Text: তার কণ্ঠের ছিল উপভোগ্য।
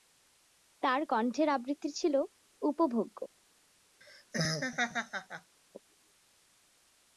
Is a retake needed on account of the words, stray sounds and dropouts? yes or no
yes